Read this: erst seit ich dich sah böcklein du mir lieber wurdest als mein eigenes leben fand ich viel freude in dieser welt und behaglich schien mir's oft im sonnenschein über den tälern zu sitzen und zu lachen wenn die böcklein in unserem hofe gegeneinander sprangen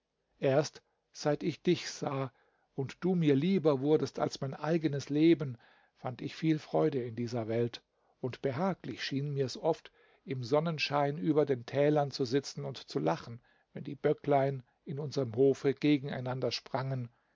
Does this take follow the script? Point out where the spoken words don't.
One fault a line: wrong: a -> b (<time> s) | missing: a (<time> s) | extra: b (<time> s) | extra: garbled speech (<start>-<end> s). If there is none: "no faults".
wrong: böcklein -> und (2.7 s)